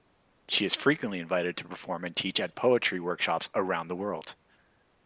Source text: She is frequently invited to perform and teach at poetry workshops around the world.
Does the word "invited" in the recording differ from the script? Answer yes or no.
no